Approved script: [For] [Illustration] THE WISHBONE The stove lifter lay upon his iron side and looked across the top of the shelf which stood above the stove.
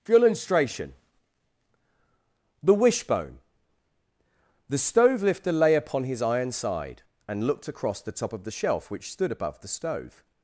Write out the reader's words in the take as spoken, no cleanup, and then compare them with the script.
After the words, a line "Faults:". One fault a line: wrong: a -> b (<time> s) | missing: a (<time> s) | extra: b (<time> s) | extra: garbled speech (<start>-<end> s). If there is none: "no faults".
[For] [Illustration] THE WISHBONE The stove lifter lay upon his iron side and looked across the top of the shelf which stood above the stove.
Faults:
no faults